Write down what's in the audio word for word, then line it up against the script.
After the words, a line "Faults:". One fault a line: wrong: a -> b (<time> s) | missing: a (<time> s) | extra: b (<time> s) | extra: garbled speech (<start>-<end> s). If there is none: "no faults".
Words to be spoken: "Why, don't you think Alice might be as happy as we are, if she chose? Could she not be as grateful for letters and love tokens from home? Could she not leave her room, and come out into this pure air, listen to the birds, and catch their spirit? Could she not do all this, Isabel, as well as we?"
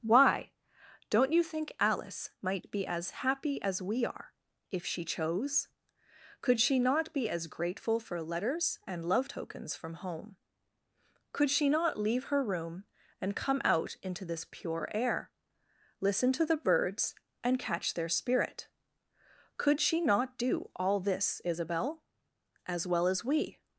"Why, don't you think Alice might be as happy as we are, if she chose? Could she not be as grateful for letters and love tokens from home? Could she not leave her room, and come out into this pure air, listen to the birds, and catch their spirit? Could she not do all this, Isabel, as well as we?"
Faults:
no faults